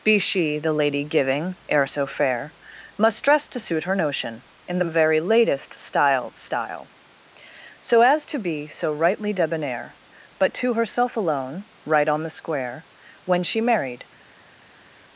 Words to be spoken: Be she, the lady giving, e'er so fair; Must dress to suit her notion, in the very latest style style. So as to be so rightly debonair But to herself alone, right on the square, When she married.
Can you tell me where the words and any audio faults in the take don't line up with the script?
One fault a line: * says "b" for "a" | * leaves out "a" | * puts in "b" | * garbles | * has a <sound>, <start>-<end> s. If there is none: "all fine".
all fine